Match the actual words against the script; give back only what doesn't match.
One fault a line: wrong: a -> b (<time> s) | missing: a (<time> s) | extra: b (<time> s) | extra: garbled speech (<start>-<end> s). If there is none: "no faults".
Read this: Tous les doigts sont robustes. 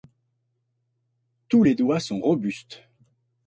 no faults